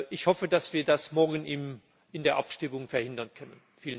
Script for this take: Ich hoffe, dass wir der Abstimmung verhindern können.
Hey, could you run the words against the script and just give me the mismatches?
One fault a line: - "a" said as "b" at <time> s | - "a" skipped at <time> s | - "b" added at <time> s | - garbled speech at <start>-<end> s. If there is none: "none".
- "das morgen in" added at 0.8 s